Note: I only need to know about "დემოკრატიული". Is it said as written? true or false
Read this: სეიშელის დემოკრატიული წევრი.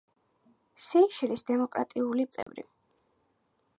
true